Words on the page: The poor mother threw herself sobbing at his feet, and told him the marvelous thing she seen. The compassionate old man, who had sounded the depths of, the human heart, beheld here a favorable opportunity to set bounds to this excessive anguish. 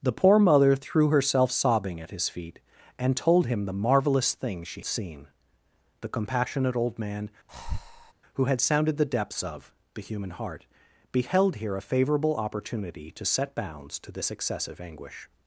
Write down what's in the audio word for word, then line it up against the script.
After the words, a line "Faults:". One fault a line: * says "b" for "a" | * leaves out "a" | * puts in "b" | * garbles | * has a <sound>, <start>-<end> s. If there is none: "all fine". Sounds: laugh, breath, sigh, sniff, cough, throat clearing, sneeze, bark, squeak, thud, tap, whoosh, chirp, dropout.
The poor mother threw herself sobbing at his feet, and told him the marvelous thing she seen. The compassionate old man, who had sounded the depths of, the human heart, beheld here a favorable opportunity to set bounds to this excessive anguish.
Faults:
* has a breath, 7.5-8.1 s